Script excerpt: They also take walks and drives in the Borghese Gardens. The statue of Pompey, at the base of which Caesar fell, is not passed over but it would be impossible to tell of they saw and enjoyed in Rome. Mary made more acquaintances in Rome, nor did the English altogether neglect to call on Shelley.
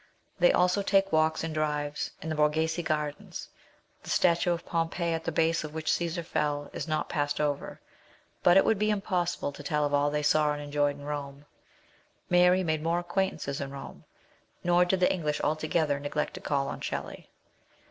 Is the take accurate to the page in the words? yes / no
no